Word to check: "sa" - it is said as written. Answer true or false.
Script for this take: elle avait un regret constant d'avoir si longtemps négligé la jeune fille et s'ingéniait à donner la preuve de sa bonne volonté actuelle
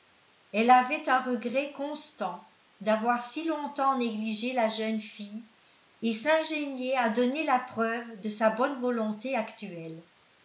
true